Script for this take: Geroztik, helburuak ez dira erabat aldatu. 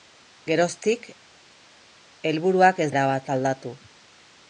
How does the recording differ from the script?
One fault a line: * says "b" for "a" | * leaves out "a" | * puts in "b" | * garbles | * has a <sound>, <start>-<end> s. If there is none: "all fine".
* leaves out "dira"